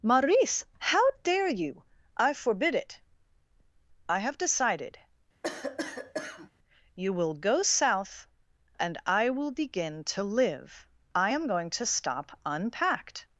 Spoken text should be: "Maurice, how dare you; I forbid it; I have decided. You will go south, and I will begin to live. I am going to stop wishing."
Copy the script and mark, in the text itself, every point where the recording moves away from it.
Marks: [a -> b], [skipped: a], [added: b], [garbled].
"Maurice, how dare you; I forbid it; I have decided. You will go south, and I will begin to live. I am going to stop [wishing." -> unpacked]